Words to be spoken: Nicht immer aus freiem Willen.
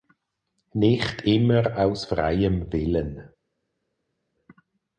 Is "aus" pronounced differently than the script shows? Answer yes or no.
no